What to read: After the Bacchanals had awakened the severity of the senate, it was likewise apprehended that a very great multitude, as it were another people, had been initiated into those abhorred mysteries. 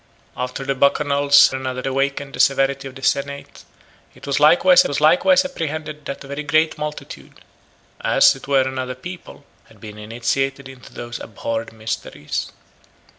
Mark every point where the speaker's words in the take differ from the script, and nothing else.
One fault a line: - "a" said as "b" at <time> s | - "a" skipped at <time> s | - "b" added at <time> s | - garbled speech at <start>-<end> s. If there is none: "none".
- "had" said as "another" at 1.5 s
- "was likewise" added at 4.9 s